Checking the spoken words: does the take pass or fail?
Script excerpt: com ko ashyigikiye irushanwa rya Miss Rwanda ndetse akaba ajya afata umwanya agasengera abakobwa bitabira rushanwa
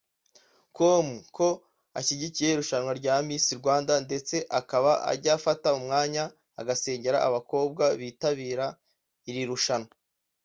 fail